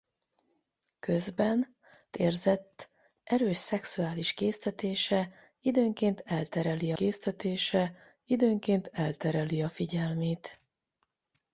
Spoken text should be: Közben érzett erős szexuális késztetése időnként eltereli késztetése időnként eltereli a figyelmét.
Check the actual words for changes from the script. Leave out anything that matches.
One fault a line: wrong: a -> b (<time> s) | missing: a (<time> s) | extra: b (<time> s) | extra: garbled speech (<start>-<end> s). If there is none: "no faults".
no faults